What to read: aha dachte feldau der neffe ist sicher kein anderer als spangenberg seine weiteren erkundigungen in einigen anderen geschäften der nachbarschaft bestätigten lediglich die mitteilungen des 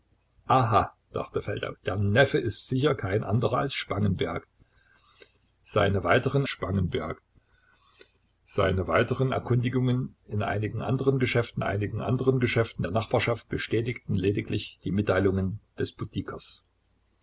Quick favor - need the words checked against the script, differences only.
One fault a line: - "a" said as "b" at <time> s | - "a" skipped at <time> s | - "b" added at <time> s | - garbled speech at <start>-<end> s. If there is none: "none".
- "spangenberg seine weiteren" added at 6.5 s
- "einigen anderen geschäften" added at 11.6 s